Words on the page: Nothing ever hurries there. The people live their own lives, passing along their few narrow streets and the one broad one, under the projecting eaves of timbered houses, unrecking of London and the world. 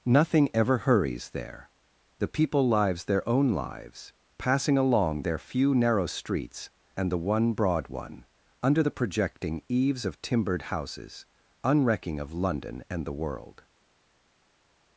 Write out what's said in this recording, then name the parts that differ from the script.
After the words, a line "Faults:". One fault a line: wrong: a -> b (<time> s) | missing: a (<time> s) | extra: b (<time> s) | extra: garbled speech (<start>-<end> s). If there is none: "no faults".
Nothing ever hurries there. The people lives their own lives, passing along their few narrow streets and the one broad one, under the projecting eaves of timbered houses, unrecking of London and the world.
Faults:
wrong: live -> lives (2.7 s)